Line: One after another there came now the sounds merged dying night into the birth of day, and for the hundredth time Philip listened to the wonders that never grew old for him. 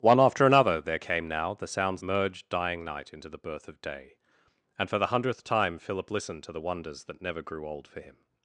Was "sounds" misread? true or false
false